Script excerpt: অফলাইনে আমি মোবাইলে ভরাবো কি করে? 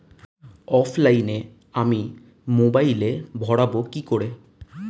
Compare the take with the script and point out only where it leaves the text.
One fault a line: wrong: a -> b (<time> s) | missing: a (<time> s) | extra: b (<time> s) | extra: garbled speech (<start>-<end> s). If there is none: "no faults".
no faults